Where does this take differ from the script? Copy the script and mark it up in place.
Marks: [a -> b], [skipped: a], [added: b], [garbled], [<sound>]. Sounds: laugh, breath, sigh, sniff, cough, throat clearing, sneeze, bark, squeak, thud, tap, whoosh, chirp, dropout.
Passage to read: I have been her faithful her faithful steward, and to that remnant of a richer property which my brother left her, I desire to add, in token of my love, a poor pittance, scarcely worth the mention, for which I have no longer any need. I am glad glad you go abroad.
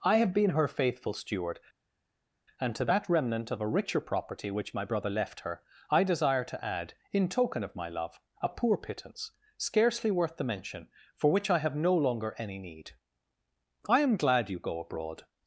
I have been her faithful [skipped: her faithful] steward, and to that remnant of a richer property which my brother left her, I desire to add, in token of my love, a poor pittance, scarcely worth the mention, for which I have no longer any need. I am glad [skipped: glad] you go abroad.